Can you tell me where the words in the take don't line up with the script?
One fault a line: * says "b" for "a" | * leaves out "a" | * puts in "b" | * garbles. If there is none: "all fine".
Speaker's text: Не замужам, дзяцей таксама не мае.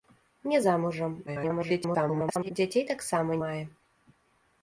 * garbles
* leaves out "не"